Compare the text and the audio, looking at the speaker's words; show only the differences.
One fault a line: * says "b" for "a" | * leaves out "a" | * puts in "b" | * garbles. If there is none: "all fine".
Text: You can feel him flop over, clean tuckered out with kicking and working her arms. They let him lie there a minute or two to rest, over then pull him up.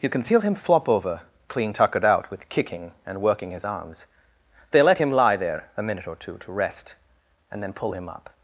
* says "his" for "her"
* says "and" for "over"